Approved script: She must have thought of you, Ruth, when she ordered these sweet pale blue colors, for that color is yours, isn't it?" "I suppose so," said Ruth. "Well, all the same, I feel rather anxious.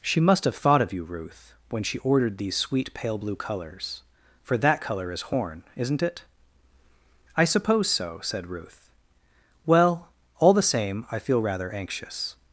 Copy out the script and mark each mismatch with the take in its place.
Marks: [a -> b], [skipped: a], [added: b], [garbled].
She must have thought of you, Ruth, when she ordered these sweet pale blue colors, for that color is [yours, -> horn] isn't it?" "I suppose so," said Ruth. "Well, all the same, I feel rather anxious.